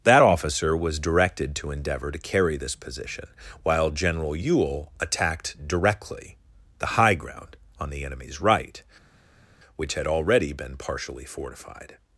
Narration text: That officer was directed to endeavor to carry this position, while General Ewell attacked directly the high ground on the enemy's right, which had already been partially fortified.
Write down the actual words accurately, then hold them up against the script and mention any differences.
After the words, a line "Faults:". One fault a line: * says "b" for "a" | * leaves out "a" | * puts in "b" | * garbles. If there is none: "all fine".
That officer was directed to endeavor to carry this position, while General Ewell attacked directly the high ground on the enemy's right, which had already been partially fortified.
Faults:
all fine